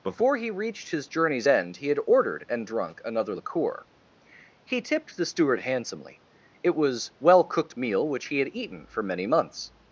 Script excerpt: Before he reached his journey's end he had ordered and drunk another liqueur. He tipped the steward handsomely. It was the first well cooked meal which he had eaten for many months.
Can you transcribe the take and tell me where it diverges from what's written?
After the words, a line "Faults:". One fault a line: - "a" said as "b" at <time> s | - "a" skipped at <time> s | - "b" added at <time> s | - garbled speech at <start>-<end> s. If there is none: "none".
Before he reached his journey's end he had ordered and drunk another liqueur. He tipped the steward handsomely. It was well cooked meal which he had eaten for many months.
Faults:
- "the first" skipped at 7.1 s